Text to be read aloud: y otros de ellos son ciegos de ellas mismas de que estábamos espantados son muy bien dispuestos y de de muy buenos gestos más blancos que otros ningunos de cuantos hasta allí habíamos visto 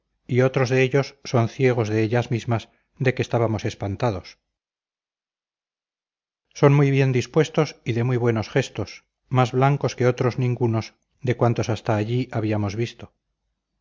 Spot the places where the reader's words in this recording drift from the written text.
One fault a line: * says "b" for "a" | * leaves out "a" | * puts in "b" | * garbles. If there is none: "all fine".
* leaves out "de"